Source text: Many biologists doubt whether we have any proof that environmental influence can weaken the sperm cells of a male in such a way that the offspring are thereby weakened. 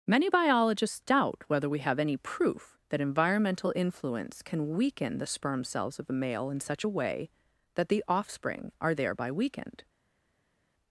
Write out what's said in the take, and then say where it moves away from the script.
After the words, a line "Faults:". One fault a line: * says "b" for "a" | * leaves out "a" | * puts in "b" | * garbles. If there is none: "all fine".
Many biologists doubt whether we have any proof that environmental influence can weaken the sperm cells of a male in such a way that the offspring are thereby weakened.
Faults:
all fine